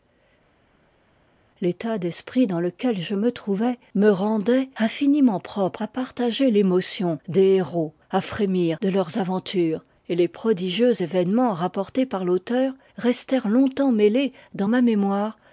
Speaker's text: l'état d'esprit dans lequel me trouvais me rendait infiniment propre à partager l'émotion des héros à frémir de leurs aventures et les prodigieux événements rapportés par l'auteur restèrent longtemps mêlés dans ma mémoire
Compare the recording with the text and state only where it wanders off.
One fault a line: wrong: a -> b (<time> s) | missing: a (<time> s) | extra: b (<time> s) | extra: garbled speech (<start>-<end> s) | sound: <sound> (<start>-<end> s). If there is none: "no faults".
extra: je (3.0 s)